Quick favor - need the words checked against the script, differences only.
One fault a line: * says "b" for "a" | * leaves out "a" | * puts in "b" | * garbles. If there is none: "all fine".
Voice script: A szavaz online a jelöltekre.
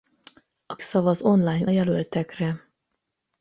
all fine